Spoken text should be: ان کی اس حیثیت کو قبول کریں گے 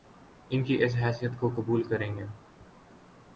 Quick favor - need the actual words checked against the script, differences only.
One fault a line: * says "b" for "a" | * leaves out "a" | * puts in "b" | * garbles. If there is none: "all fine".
all fine